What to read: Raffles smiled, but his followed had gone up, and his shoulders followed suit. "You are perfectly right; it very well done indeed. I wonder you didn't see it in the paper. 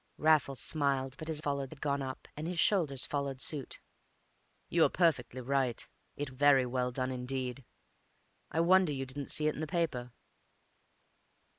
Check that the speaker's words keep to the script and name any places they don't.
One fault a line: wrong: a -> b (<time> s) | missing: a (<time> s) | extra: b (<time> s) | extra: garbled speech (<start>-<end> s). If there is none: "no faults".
no faults